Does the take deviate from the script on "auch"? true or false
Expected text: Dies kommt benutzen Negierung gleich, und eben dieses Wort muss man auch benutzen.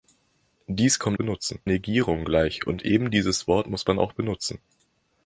false